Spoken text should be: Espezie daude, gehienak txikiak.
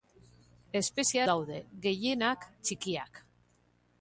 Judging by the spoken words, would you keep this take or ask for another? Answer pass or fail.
pass